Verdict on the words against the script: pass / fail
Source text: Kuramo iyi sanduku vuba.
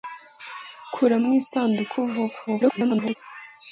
fail